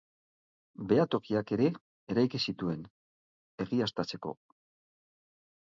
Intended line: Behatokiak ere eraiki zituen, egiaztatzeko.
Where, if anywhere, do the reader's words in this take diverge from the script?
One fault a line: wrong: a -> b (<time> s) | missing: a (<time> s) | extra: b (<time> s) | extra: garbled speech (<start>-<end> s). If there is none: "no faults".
no faults